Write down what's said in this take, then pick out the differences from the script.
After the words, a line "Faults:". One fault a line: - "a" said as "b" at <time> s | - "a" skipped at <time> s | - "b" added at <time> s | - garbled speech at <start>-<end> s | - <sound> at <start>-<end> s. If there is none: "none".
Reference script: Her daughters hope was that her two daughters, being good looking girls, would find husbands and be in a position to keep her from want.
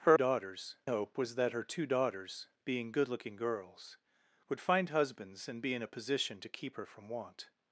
Her daughters hope was that her two daughters, being good looking girls, would find husbands and be in a position to keep her from want.
Faults:
none